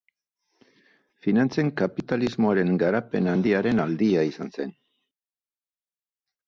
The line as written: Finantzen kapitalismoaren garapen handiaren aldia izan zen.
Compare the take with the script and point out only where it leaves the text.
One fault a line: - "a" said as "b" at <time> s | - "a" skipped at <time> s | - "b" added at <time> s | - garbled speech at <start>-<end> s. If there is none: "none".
none